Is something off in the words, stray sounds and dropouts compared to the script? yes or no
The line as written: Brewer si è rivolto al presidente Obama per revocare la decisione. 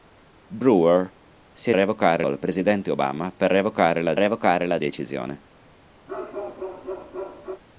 yes